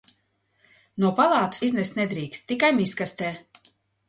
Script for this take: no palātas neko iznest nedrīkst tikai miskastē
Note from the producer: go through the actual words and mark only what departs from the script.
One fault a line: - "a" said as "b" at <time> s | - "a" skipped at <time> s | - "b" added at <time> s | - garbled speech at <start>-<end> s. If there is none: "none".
- "neko" skipped at 1.6 s